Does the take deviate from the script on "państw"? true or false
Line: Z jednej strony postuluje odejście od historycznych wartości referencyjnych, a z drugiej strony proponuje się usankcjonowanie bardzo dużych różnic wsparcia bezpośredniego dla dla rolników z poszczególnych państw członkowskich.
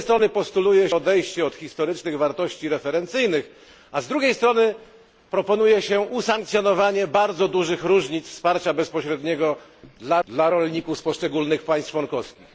false